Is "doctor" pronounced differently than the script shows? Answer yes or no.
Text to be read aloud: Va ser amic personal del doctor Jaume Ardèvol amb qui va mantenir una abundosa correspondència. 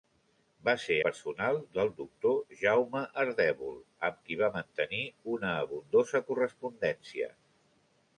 no